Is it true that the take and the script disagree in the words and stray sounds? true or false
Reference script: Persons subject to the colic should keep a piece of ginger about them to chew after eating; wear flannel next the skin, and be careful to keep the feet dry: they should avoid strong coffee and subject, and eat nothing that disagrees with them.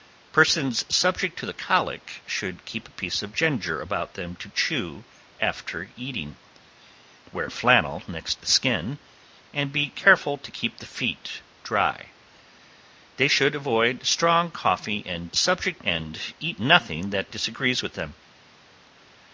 false